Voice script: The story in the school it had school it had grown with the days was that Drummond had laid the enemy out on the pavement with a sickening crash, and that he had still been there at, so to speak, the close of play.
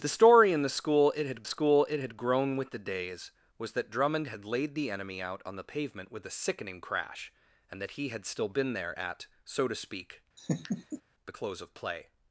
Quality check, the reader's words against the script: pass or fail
pass